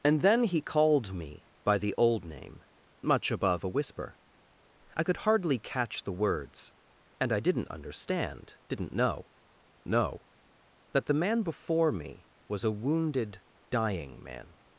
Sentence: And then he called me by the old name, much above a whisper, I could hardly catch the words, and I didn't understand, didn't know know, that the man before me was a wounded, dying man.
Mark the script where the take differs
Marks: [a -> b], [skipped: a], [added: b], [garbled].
And then he called me by the old name, much above a whisper, I could hardly catch the words, and I didn't understand, didn't know know, that the man before me was a wounded, dying man.